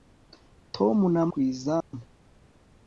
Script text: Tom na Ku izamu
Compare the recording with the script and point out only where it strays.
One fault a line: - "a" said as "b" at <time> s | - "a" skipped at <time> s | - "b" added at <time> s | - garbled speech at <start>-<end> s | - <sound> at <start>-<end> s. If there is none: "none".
- dropout at 1.8-1.9 s